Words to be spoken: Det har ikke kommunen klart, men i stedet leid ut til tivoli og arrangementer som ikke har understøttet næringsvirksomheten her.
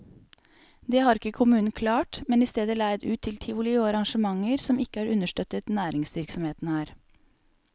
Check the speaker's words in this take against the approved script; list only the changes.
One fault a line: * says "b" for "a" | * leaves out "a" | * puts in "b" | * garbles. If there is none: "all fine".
all fine